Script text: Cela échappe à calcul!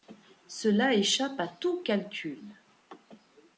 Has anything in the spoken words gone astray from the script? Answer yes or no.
yes